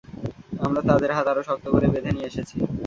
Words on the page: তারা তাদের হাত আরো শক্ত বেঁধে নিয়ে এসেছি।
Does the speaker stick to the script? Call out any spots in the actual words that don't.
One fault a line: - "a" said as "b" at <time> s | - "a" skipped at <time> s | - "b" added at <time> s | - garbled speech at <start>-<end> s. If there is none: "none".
- "তারা" said as "আমরা" at 0.6 s
- "করে" added at 1.7 s